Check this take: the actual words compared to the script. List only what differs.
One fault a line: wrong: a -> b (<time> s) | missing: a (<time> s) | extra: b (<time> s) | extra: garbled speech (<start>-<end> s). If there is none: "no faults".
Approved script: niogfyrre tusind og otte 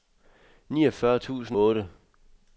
missing: og (1.6 s)